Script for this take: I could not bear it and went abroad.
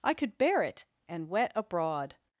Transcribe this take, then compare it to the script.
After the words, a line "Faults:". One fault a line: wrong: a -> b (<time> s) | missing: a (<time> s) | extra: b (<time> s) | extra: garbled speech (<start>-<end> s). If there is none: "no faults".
I could bear it and wet abroad.
Faults:
missing: not (0.4 s)
wrong: went -> wet (1.3 s)